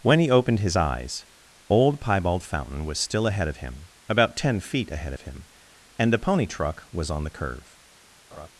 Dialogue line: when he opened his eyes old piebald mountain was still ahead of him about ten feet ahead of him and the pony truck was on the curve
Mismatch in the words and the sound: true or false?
true